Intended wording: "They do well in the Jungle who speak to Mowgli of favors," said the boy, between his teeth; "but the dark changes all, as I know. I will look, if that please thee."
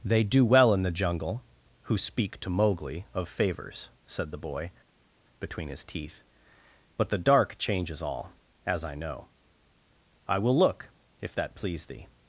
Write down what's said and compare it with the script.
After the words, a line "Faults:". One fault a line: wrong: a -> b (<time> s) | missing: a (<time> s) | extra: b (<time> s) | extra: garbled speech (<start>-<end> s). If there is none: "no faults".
"They do well in the Jungle who speak to Mowgli of favors," said the boy, between his teeth; "but the dark changes all, as I know. I will look, if that please thee."
Faults:
no faults